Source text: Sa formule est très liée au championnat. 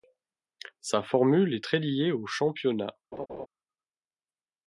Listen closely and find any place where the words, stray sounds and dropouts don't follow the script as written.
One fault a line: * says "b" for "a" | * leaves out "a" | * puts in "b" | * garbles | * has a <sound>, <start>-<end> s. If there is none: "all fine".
* has a laugh, 3.1-3.5 s